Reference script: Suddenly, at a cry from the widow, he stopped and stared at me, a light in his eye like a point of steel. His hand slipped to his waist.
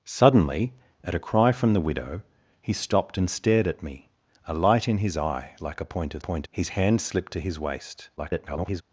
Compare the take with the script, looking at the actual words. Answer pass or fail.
fail